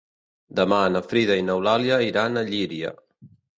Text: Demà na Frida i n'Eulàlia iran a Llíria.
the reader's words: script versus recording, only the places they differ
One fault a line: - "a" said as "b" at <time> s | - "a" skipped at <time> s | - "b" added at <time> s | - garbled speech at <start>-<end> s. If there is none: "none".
none